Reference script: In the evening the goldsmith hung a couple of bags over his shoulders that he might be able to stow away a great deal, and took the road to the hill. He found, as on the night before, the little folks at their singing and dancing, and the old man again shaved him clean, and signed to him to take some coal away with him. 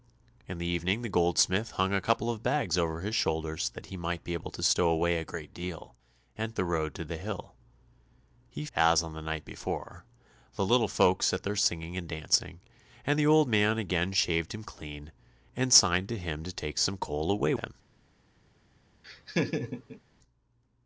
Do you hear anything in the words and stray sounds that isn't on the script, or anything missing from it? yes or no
yes